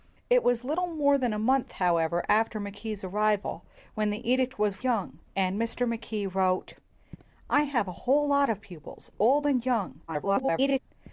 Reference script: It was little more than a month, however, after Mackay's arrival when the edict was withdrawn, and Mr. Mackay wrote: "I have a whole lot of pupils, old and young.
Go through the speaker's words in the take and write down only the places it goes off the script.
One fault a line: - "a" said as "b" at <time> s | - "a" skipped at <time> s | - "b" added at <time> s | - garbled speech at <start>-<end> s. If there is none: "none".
- "withdrawn" said as "young" at 4.8 s
- garbled speech at 10.1-10.8 s